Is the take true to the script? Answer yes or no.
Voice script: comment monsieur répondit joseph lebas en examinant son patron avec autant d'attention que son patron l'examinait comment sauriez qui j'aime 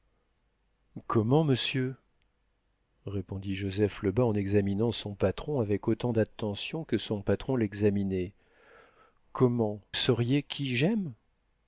yes